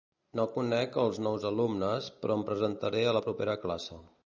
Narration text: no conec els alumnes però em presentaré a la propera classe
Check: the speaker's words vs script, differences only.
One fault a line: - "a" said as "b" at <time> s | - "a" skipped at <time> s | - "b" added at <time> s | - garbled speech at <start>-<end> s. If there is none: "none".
- "nous" added at 1.2 s